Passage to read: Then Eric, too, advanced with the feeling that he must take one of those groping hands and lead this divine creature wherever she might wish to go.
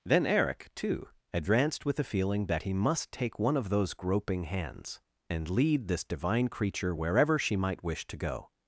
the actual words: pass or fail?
pass